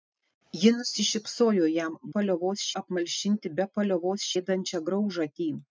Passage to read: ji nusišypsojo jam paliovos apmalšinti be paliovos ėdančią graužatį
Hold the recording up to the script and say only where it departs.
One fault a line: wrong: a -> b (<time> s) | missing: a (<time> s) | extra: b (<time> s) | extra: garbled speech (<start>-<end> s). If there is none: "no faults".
no faults